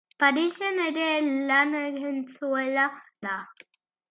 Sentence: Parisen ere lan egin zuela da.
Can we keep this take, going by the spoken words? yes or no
yes